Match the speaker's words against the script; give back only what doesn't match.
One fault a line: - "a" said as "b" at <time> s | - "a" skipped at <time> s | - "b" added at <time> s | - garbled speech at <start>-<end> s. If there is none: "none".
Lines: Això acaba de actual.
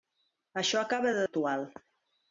none